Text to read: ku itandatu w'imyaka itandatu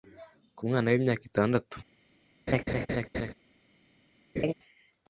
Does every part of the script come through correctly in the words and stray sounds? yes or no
no